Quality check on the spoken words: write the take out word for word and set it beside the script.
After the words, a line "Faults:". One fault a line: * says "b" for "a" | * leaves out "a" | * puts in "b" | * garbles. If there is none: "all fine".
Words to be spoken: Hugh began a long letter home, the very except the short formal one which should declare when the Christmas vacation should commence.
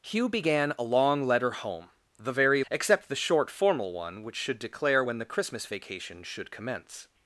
Hugh began a long letter home, the very except the short formal one which should declare when the Christmas vacation should commence.
Faults:
all fine